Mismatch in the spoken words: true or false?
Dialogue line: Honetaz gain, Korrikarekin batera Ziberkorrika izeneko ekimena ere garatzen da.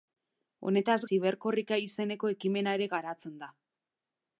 true